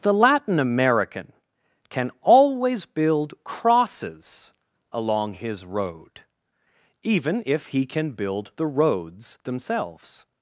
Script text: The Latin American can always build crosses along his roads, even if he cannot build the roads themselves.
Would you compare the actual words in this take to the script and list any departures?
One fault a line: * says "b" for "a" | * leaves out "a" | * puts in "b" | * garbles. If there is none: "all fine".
* says "road" for "roads"
* says "can" for "cannot"